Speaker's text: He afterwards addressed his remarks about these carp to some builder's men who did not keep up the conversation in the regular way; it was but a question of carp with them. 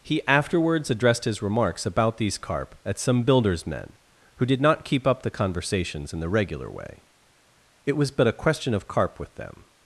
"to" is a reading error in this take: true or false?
true